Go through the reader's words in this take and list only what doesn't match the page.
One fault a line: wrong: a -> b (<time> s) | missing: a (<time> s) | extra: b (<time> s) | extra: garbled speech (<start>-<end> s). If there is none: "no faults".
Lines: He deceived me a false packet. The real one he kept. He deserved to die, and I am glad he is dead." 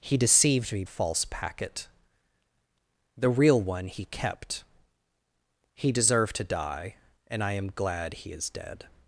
no faults